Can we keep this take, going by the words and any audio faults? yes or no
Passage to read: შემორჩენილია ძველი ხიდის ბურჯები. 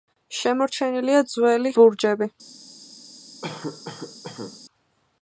no